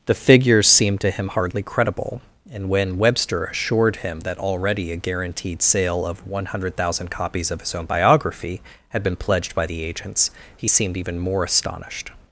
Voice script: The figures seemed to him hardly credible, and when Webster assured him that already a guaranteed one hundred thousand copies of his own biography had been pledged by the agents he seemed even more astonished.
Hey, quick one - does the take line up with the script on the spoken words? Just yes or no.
no